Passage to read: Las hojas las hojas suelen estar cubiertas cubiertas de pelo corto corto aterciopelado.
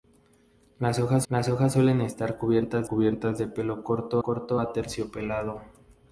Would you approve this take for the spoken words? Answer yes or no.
yes